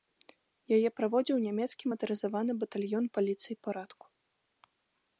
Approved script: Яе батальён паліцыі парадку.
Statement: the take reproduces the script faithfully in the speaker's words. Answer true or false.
false